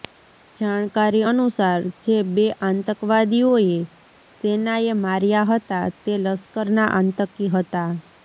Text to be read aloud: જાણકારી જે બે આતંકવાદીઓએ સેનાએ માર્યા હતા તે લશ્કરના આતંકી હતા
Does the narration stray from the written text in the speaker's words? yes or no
yes